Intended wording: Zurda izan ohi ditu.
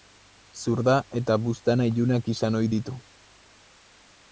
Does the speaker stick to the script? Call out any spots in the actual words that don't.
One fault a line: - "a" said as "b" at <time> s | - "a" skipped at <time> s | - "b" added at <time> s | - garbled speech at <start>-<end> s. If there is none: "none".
- "eta buztana ilunak" added at 1.2 s